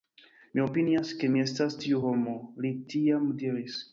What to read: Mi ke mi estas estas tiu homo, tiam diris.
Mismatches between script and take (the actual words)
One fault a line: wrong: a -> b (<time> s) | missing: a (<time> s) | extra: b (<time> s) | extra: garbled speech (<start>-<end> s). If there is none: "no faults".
extra: opinias (0.6 s)
missing: estas (1.8 s)
extra: li (2.7 s)